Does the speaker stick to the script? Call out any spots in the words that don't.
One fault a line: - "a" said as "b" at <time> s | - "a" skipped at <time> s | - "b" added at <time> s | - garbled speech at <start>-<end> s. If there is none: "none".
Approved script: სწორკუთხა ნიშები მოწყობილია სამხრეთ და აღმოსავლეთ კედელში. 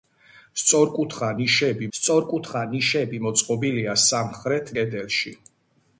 - "სწორკუთხა ნიშები" added at 2.0 s
- "და აღმოსავლეთ" skipped at 4.8 s